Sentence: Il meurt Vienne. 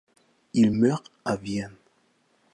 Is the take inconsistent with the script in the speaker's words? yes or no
yes